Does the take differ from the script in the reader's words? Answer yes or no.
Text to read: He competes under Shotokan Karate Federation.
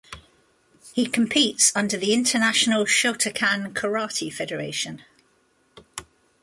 yes